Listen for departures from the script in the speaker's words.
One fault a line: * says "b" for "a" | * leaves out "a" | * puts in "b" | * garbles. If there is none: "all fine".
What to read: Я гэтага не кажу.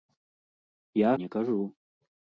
* leaves out "гэтага"